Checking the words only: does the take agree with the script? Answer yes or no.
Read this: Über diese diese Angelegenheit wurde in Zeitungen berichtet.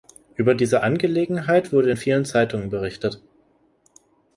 no